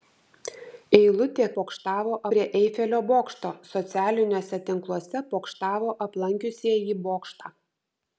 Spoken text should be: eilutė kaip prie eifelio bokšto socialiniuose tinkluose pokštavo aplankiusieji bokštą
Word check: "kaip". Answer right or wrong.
wrong